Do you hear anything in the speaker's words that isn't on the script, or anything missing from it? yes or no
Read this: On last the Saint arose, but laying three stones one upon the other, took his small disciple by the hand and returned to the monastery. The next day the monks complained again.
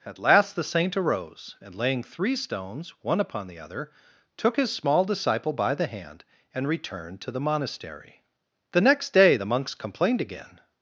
yes